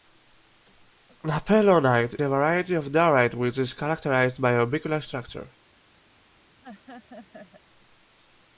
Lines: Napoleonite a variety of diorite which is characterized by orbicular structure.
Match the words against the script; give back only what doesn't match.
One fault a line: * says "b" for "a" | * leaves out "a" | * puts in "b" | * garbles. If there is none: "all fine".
all fine